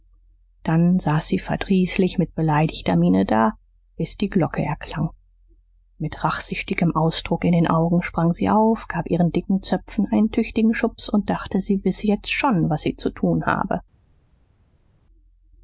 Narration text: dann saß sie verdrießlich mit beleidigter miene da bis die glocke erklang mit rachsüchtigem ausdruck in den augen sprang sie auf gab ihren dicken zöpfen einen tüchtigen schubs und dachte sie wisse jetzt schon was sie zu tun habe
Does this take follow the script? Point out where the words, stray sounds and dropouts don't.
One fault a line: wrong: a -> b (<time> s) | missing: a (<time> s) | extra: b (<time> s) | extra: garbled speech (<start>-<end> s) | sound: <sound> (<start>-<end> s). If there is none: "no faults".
no faults